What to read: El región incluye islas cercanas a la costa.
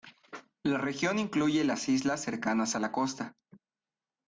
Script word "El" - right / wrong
wrong